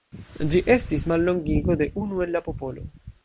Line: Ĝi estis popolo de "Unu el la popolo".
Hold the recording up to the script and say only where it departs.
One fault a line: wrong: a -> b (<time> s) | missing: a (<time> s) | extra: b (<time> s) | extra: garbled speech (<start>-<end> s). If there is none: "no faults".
wrong: popolo -> mallongigo (1.1 s)